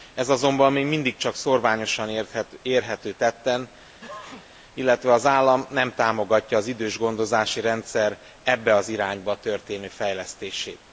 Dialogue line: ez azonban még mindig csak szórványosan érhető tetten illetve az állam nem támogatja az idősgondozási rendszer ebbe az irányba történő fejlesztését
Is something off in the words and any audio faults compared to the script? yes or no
yes